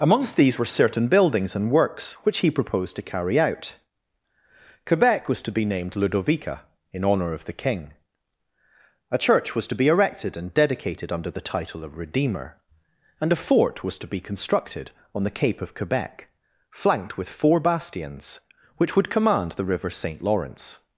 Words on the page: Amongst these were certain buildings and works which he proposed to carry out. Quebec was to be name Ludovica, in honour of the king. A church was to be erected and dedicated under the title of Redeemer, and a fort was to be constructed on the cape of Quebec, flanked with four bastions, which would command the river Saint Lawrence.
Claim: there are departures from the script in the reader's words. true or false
true